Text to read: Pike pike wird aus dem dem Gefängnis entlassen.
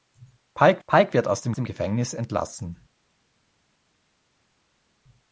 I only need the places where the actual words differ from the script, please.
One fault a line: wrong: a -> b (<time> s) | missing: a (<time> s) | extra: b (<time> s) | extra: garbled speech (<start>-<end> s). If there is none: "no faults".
no faults